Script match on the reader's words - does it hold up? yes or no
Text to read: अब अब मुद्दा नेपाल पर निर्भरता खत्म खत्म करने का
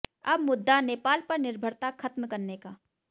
no